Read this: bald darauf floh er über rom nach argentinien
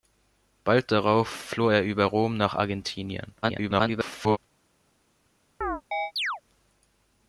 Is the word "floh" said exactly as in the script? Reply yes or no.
yes